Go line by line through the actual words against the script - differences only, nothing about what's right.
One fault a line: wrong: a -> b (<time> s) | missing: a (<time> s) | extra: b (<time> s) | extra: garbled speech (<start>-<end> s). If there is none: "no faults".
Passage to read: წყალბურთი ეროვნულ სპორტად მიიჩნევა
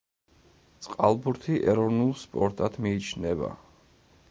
no faults